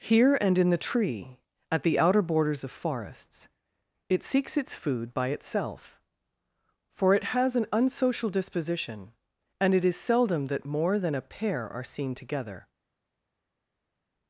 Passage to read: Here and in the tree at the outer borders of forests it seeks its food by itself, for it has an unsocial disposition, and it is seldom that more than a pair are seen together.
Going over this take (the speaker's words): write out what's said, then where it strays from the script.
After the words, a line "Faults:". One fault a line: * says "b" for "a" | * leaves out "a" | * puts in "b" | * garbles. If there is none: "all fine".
Here and in the tree at the outer borders of forests it seeks its food by itself, for it has an unsocial disposition, and it is seldom that more than a pair are seen together.
Faults:
all fine